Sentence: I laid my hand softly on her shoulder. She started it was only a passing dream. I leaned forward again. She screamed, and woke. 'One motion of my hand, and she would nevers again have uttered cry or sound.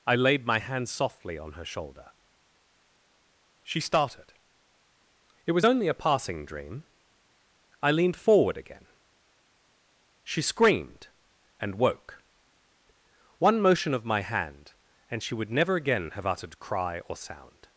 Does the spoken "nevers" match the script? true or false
false